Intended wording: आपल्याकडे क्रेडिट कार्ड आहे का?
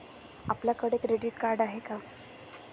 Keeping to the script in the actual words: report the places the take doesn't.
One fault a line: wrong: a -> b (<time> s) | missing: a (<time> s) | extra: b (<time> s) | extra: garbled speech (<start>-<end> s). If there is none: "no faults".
no faults